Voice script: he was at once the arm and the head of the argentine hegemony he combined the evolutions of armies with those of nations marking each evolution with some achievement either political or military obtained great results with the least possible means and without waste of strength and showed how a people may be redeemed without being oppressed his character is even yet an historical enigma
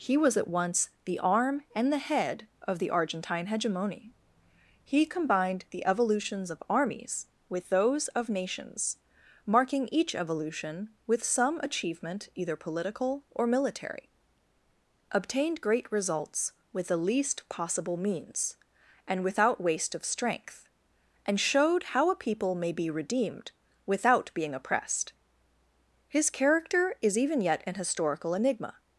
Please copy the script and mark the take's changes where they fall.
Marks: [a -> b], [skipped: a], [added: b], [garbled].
he was at once the arm and the head of the argentine hegemony he combined the evolutions of armies with those of nations marking each evolution with some achievement either political or military obtained great results with the least possible means and without waste of strength and showed how a people may be redeemed without being oppressed his character is even yet an historical enigma